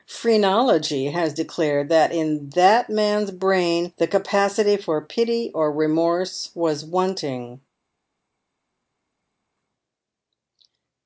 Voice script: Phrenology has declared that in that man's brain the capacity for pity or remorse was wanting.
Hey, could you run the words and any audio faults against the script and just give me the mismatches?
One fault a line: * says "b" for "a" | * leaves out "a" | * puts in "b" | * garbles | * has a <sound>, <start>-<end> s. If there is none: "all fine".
all fine